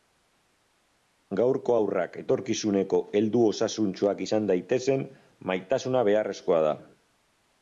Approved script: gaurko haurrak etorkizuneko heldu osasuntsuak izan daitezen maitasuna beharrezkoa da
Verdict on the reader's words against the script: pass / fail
pass